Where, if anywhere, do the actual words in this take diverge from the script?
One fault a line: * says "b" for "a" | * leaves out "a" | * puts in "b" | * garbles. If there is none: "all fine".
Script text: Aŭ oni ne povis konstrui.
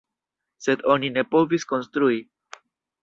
* says "Sed" for "Aŭ"